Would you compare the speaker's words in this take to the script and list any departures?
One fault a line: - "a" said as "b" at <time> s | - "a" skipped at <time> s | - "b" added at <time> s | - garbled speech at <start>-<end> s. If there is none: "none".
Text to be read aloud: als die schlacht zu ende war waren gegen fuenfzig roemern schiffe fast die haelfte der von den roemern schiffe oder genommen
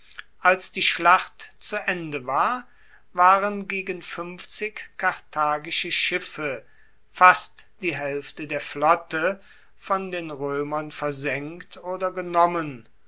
- "roemern" said as "karthagische" at 5.0 s
- "flotte" added at 8.6 s
- "schiffe" said as "versenkt" at 10.9 s